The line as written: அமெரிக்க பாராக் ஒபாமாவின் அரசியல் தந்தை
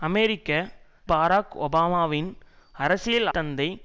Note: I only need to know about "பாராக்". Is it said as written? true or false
true